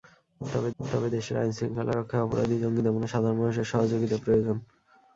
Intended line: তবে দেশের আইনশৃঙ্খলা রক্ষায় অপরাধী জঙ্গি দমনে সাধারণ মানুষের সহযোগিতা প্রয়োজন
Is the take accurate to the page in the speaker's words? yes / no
no